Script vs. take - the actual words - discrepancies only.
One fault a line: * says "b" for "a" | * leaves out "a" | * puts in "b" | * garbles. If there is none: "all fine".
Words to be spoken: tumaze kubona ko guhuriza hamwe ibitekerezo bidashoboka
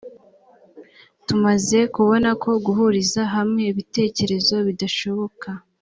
all fine